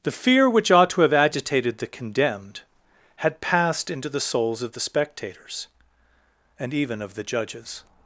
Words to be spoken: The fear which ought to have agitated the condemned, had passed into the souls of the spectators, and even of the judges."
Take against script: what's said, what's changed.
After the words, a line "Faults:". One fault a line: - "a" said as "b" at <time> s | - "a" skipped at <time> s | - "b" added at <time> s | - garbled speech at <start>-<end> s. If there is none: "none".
The fear which ought to have agitated the condemned, had passed into the souls of the spectators, and even of the judges."
Faults:
none